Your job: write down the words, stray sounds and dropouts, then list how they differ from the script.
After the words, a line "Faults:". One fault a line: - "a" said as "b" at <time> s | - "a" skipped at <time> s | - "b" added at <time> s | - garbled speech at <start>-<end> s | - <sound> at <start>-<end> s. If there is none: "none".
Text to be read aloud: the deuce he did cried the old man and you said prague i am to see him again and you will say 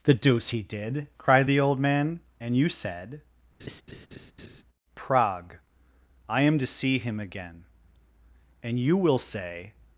the deuce he did cried the old man and you said prague i am to see him again and you will say
Faults:
- laugh at 3.6-4.6 s